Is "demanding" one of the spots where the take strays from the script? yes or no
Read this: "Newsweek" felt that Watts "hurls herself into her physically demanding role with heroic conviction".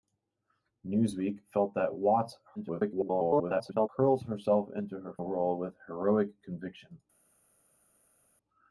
yes